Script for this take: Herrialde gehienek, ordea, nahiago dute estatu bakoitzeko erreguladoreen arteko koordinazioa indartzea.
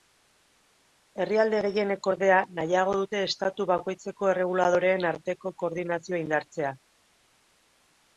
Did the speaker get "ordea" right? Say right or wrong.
right